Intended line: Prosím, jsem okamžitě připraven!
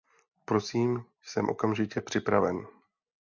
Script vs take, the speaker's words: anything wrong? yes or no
no